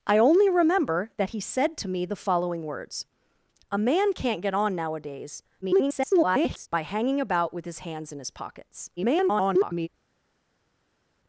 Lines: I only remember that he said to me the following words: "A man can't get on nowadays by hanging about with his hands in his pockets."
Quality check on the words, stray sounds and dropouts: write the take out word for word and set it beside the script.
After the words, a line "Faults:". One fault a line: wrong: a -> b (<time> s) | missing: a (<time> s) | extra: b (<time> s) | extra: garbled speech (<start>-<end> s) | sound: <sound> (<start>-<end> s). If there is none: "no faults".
I only remember that he said to me the following words: "A man can't get on nowadays [garbled] by hanging about with his hands in his pockets." [garbled]
Faults:
extra: garbled speech (5.6-6.7 s)
extra: garbled speech (9.0-9.9 s)